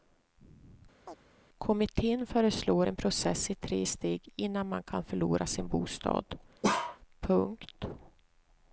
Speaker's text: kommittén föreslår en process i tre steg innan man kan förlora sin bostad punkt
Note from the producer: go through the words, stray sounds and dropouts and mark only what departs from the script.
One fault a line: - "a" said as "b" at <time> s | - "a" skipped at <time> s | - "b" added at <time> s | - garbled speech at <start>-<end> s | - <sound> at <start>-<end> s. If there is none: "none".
- chirp at 1.1-1.2 s
- bark at 6.6-7.0 s